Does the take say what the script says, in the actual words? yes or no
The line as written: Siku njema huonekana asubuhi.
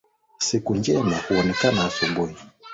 yes